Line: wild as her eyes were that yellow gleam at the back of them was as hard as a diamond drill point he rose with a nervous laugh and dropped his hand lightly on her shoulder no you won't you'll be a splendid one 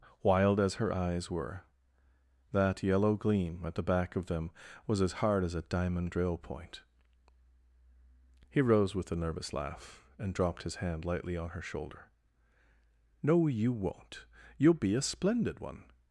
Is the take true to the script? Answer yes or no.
yes